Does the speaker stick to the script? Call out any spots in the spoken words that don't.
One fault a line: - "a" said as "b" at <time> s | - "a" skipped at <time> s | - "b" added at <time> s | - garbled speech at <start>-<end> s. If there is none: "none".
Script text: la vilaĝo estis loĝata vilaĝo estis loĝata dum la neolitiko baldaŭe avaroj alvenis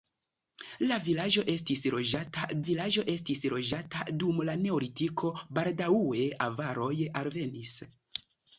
none